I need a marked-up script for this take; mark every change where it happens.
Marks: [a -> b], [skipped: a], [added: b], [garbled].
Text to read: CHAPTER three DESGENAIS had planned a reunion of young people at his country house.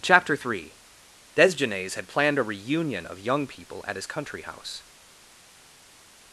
CHAPTER three DESGENAIS had planned a reunion of young people at his country house.